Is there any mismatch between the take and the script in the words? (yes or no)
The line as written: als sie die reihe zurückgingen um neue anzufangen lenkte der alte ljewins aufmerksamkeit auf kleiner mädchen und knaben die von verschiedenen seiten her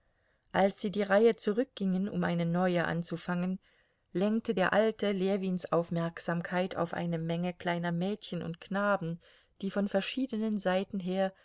yes